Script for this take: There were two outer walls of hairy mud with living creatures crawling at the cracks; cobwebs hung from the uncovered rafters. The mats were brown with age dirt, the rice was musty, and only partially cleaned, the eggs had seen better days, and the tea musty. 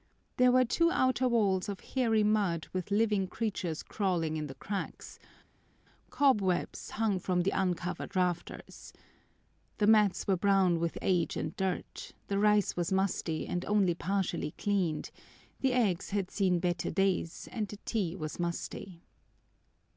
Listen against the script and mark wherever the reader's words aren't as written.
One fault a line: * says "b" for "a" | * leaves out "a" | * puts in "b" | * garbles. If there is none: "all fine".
* says "in" for "at"
* puts in "and"
* puts in "was"